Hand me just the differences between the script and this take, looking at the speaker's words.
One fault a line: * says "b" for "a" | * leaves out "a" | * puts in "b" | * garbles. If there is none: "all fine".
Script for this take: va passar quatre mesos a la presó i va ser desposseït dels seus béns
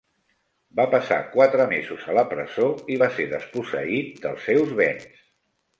all fine